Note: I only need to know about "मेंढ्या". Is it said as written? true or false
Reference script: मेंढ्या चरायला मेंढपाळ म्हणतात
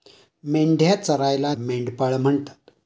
true